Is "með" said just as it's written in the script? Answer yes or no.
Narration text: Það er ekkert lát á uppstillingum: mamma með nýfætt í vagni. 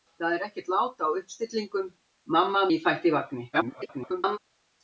no